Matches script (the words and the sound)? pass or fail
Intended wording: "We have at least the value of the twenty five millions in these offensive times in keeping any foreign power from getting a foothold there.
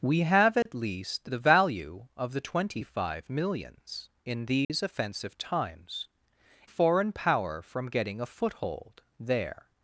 fail